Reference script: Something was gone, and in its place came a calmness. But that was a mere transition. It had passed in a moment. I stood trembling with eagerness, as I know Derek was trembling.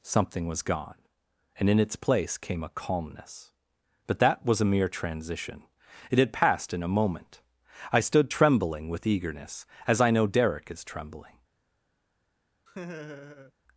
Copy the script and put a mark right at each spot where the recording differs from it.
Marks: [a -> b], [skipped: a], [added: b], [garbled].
Something was gone, and in its place came a calmness. But that was a mere transition. It had passed in a moment. I stood trembling with eagerness, as I know Derek [was -> is] trembling.